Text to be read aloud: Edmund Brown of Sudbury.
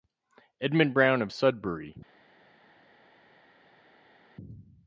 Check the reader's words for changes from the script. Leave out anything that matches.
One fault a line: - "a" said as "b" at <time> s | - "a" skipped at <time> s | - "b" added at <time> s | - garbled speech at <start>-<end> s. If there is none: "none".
none